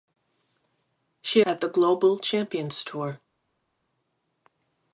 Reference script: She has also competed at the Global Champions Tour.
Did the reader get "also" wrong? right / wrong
wrong